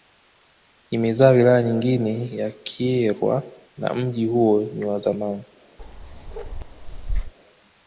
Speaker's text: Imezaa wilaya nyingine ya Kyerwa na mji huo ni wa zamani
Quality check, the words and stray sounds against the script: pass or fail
fail